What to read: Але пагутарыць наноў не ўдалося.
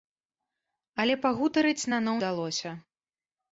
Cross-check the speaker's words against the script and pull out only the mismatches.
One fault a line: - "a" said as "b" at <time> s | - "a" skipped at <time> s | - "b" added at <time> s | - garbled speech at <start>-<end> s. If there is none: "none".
- "не" skipped at 2.2 s